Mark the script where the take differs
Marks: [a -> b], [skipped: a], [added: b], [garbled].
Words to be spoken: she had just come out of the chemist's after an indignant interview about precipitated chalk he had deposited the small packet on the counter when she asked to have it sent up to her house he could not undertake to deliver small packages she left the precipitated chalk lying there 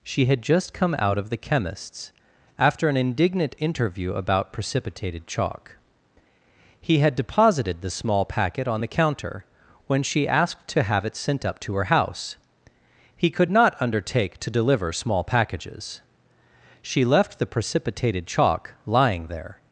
she had just come out of the chemist's after an indignant interview about precipitated chalk he had deposited the small packet on the counter when she asked to have it sent up to her house he could not undertake to deliver small packages she left the precipitated chalk lying there